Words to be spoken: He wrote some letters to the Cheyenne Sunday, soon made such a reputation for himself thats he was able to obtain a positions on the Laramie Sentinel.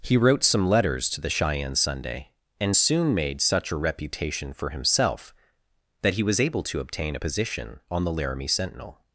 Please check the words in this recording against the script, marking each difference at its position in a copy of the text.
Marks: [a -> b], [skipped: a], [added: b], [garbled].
He wrote some letters to the Cheyenne Sunday, [added: and] soon made such a reputation for himself [thats -> that] he was able to obtain a [positions -> position] on the Laramie Sentinel.